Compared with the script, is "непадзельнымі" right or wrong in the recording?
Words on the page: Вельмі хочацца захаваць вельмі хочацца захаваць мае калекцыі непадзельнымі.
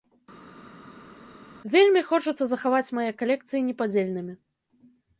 right